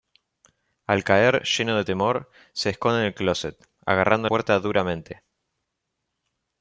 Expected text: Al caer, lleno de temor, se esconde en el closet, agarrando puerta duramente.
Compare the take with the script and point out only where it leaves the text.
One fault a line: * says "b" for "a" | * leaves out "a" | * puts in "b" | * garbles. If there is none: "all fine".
all fine